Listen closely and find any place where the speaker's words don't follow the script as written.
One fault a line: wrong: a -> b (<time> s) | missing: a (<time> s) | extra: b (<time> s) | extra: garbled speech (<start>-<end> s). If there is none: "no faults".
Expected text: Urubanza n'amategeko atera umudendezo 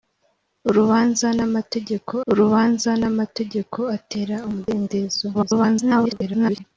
extra: urubanza n'amategeko (2.3 s)
extra: garbled speech (5.3-6.6 s)